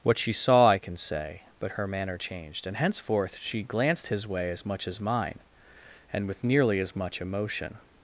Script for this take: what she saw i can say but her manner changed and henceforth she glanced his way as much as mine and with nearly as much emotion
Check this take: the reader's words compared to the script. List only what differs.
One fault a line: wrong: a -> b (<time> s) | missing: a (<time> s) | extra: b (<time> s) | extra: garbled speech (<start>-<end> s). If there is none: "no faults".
no faults